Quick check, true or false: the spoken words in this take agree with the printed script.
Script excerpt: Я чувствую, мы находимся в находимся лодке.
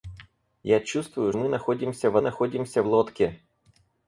true